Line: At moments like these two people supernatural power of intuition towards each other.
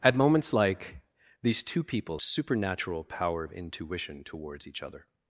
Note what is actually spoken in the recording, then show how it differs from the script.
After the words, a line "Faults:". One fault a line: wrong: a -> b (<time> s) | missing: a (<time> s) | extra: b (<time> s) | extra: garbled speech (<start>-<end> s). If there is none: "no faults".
At moments like these two people supernatural power of intuition towards each other.
Faults:
no faults